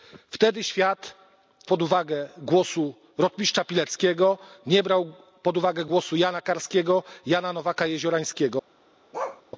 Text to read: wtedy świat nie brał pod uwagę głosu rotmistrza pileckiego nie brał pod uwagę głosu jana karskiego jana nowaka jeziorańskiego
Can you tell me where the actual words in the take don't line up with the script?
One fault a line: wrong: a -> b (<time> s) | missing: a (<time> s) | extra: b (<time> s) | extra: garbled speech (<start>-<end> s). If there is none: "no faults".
missing: nie brał (1.1 s)